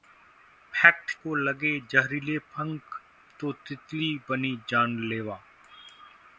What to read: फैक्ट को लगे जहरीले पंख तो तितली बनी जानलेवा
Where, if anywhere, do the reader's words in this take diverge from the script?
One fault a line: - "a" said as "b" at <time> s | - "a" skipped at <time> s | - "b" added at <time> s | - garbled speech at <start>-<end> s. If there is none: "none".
none